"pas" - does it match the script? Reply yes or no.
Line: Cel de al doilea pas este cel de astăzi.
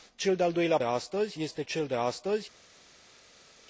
no